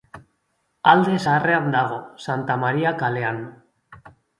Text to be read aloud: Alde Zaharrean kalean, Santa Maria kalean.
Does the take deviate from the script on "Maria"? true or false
false